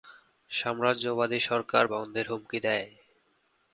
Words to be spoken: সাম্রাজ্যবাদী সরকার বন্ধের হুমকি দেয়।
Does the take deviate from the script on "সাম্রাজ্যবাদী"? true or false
false